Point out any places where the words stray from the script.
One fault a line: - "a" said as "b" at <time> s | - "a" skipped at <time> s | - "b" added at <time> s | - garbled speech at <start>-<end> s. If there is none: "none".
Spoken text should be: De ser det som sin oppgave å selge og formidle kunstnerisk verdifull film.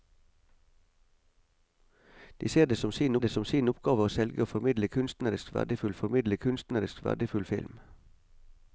- "det som sin" added at 3.2 s
- "formidle kunstnerisk verdifull" added at 6.0 s